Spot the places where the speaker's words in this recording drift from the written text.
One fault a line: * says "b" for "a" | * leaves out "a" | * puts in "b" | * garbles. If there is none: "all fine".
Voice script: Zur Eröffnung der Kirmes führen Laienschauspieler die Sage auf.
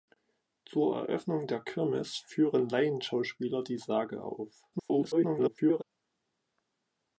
* garbles